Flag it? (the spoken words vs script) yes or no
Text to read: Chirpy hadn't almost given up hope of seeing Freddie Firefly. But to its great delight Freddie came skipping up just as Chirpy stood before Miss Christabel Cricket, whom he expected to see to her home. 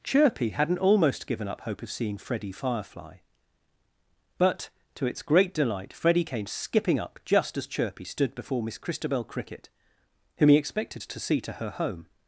no